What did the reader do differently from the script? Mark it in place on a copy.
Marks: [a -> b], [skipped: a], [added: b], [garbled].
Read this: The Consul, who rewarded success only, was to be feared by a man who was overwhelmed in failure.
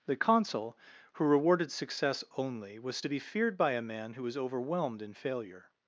The Consul, who rewarded success only, was to be feared by a man who was overwhelmed in failure.